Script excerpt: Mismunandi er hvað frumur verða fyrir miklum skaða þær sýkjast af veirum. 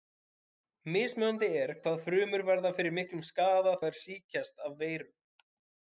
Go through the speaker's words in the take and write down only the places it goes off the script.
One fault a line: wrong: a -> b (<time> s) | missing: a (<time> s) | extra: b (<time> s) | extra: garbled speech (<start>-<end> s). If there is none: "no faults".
no faults